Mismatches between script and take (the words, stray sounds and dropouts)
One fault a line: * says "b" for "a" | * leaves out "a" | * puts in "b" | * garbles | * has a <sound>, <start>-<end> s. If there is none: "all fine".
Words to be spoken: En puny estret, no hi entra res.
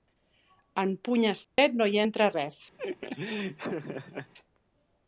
* has a dropout, 1.4-1.6 s
* has a laugh, 2.8-4.3 s